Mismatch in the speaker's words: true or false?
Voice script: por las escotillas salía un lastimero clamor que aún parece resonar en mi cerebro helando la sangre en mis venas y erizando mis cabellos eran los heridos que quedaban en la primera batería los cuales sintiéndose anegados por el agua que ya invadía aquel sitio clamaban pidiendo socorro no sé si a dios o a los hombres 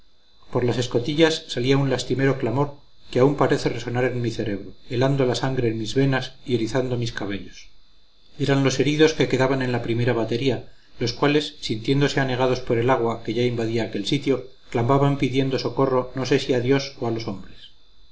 false